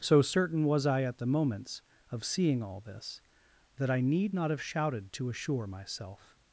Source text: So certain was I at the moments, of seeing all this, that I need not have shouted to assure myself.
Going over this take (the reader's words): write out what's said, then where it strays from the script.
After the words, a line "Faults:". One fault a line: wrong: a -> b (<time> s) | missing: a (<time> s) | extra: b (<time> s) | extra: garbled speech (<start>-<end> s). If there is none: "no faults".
So certain was I at the moments, of seeing all this, that I need not have shouted to assure myself.
Faults:
no faults